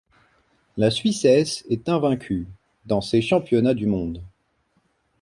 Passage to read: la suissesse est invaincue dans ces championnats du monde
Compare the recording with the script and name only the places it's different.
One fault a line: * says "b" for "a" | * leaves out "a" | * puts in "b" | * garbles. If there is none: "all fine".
all fine